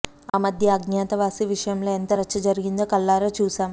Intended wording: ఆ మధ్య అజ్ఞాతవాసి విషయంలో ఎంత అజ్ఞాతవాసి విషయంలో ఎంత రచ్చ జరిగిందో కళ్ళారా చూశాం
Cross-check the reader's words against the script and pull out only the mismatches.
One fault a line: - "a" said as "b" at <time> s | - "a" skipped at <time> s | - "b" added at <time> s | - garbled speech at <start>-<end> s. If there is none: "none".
- "అజ్ఞాతవాసి విషయంలో ఎంత" skipped at 2.1 s